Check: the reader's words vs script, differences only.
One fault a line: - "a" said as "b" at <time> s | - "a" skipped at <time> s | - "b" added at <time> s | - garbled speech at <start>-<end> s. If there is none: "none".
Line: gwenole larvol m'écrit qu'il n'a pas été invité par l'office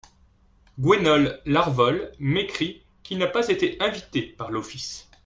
none